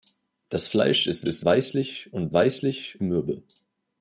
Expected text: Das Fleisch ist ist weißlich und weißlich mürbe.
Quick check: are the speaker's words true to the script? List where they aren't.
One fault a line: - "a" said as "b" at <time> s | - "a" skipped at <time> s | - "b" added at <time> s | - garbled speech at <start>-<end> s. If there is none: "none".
none